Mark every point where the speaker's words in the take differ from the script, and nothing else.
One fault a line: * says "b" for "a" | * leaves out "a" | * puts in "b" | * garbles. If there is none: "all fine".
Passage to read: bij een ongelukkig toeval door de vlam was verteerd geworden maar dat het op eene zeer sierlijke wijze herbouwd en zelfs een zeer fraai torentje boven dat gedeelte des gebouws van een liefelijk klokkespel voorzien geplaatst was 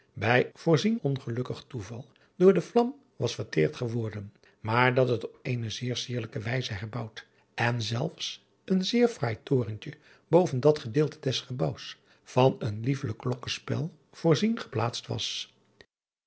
* says "voorzien" for "een"